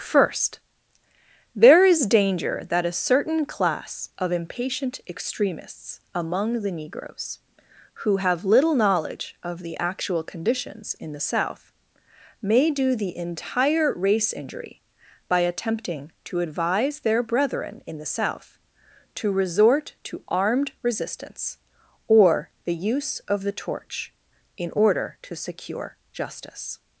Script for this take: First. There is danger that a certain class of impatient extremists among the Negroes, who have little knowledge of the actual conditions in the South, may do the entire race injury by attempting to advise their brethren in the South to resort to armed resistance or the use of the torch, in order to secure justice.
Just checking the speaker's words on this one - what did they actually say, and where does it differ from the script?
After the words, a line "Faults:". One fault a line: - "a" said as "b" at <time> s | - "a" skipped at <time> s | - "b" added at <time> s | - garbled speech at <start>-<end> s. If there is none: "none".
First. There is danger that a certain class of impatient extremists among the Negroes, who have little knowledge of the actual conditions in the South, may do the entire race injury by attempting to advise their brethren in the South to resort to armed resistance or the use of the torch, in order to secure justice.
Faults:
none